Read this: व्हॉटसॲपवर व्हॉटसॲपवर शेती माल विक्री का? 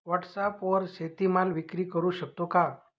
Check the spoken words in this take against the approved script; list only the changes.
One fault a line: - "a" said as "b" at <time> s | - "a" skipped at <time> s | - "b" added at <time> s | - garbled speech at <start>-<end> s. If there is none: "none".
- "व्हॉटसॲपवर" skipped at 0.9 s
- "करु शकतो" added at 1.9 s